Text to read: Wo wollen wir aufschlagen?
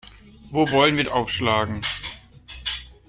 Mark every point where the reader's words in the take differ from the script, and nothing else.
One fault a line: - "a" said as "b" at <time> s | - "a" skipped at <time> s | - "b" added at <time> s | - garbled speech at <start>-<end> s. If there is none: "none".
none